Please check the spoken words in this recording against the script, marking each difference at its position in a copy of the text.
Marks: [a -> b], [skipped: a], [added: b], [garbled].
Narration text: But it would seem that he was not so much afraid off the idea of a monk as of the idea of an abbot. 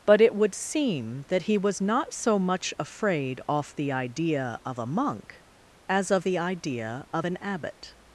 But it would seem that he was not so much afraid off the idea of a monk as of the idea of an abbot.